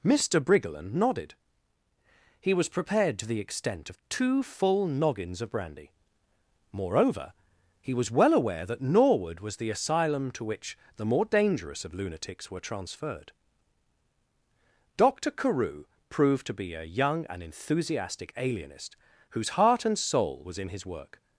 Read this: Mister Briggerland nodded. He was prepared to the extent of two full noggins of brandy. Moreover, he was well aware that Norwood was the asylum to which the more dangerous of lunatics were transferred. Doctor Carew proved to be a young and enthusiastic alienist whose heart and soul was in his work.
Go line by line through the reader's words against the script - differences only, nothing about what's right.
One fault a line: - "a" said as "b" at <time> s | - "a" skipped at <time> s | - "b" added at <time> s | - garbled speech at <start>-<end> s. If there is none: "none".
none